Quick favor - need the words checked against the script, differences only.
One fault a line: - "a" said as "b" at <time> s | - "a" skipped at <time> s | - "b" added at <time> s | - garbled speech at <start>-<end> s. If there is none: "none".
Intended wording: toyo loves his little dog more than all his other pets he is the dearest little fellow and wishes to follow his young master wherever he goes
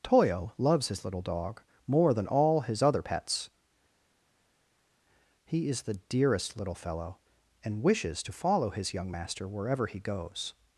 none